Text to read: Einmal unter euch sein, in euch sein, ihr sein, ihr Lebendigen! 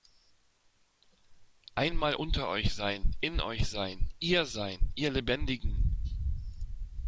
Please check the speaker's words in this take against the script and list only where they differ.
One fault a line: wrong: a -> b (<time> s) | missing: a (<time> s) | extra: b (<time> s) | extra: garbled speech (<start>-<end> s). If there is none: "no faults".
no faults